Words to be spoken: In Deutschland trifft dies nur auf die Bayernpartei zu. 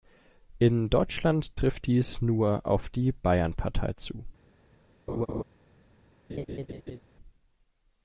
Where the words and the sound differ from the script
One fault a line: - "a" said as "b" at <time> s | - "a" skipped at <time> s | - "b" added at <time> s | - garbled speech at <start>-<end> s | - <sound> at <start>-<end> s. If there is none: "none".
- laugh at 5.1-5.4 s
- laugh at 6.3-7.0 s